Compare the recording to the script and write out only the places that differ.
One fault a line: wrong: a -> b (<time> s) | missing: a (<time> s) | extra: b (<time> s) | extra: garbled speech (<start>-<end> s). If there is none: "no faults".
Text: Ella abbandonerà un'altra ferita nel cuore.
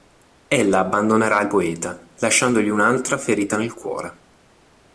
extra: il poeta lasciandogli (1.4 s)